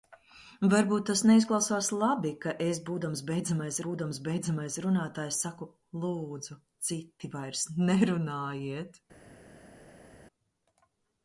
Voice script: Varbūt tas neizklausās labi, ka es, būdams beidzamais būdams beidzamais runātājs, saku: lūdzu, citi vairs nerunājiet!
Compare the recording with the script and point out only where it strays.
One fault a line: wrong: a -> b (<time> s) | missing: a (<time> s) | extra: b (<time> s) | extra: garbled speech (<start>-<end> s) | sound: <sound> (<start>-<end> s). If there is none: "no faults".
no faults